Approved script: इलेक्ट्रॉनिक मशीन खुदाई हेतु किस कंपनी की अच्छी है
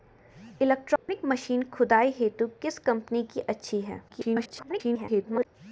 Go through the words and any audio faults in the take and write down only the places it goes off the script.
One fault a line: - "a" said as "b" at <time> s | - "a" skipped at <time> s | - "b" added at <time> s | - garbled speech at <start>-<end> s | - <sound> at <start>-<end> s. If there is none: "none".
- dropout at 1.0-1.1 s
- garbled speech at 4.1-5.5 s